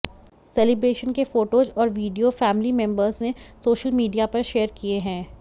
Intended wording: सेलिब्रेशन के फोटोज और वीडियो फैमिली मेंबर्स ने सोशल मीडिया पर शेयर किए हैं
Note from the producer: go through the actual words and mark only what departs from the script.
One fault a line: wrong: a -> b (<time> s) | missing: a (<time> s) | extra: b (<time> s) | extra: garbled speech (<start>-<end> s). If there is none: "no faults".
no faults